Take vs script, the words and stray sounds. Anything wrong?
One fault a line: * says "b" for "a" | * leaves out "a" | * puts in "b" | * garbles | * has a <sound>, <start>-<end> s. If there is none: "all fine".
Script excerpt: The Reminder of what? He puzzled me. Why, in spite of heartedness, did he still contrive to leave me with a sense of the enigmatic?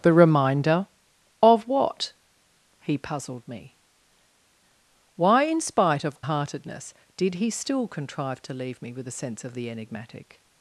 all fine